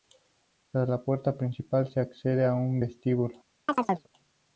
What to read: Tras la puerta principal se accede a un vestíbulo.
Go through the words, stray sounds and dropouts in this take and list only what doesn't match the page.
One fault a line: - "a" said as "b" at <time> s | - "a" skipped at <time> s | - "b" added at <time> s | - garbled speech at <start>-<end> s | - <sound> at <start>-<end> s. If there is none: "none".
- chirp at 3.7-4.1 s